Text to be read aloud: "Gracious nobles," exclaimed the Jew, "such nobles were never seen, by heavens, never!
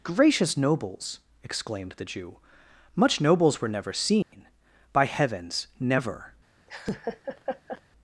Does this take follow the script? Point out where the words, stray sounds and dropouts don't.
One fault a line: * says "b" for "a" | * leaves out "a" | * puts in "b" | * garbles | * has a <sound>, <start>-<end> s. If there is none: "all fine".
* says "much" for "such"
* has a dropout, 4.2-4.3 s
* has a laugh, 6.7-7.8 s